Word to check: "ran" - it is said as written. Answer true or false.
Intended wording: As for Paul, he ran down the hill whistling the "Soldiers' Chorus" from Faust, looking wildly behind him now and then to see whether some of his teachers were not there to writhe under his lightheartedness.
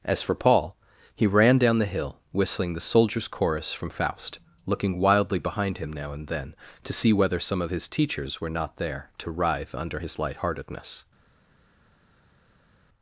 true